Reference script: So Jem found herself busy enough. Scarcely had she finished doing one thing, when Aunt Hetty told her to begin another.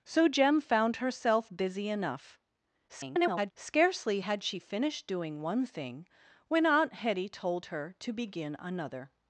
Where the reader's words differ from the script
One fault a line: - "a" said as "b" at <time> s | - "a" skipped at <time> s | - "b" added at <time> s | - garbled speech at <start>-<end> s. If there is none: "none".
- garbled speech at 2.9-3.5 s